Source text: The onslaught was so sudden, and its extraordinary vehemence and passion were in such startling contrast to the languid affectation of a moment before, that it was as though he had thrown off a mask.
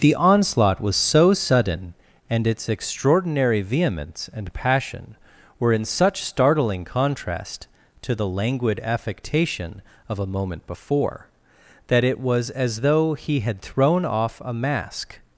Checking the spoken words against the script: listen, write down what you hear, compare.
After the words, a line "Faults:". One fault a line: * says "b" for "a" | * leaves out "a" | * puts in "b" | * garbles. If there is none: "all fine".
The onslaught was so sudden, and its extraordinary vehemence and passion were in such startling contrast to the languid affectation of a moment before, that it was as though he had thrown off a mask.
Faults:
all fine